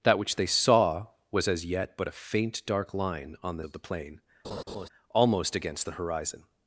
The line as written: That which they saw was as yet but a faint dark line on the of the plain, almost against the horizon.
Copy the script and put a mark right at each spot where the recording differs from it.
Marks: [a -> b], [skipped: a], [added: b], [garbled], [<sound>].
That which they saw was as yet but a faint dark line on the of the plain, [laugh] almost against the horizon.